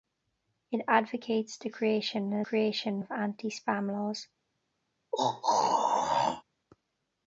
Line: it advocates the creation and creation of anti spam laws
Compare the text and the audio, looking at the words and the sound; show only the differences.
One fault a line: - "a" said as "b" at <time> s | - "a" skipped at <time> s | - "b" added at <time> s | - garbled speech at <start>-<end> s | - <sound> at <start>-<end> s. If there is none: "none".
- throat clearing at 5.1-6.4 s